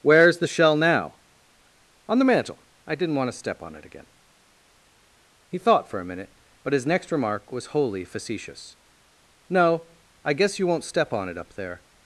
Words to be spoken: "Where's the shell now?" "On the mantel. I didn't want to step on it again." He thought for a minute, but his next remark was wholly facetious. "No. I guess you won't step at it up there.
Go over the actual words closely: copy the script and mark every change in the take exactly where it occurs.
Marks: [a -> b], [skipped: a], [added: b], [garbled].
"Where's the shell now?" "On the mantel. I didn't want to step on it again." He thought for a minute, but his next remark was wholly facetious. "No. I guess you won't step [at -> on] it up there.